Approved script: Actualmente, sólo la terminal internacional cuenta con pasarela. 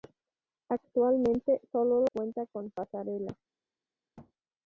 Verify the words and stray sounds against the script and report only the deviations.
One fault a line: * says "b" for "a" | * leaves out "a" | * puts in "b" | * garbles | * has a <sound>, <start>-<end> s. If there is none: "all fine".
* leaves out "la terminal internacional"
* has a thud, 4.2-4.3 s